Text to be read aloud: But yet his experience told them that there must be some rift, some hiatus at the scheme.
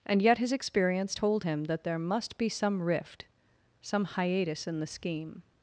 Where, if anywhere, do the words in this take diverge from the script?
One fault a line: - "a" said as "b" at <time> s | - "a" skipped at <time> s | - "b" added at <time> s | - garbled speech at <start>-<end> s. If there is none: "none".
- "But" said as "And" at 0.1 s
- "them" said as "him" at 1.4 s
- "at" said as "in" at 4.7 s